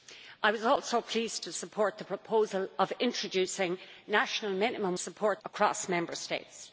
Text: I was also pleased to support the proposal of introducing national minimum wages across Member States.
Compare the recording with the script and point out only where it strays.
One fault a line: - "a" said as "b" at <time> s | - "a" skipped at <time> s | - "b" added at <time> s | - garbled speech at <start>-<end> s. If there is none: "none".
- "wages" said as "support" at 5.0 s